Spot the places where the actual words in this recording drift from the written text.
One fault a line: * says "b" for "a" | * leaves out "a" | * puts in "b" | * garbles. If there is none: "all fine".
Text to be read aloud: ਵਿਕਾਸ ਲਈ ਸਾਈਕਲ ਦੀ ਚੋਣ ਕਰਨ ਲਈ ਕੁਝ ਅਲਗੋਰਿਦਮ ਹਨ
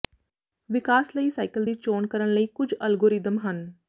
all fine